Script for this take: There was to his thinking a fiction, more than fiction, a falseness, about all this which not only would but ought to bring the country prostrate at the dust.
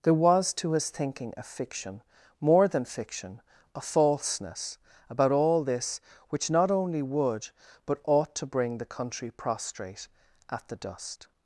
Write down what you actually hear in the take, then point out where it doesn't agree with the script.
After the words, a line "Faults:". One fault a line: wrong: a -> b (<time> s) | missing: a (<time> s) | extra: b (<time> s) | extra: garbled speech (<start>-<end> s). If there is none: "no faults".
There was to his thinking a fiction, more than fiction, a falseness, about all this which not only would but ought to bring the country prostrate at the dust.
Faults:
no faults